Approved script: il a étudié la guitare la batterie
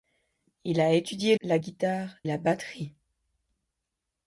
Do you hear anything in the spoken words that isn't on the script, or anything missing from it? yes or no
no